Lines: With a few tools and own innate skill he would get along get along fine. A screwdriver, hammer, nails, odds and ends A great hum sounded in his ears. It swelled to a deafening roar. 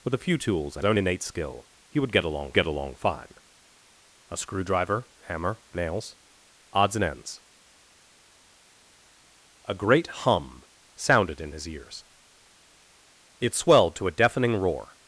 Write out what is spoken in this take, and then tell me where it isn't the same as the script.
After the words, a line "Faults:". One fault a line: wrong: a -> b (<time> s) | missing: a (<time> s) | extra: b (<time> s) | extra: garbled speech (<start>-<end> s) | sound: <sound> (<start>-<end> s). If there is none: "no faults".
With a few tools and own innate skill he would get along get along fine. A screwdriver, hammer, nails, odds and ends A great hum sounded in his ears. It swelled to a deafening roar.
Faults:
no faults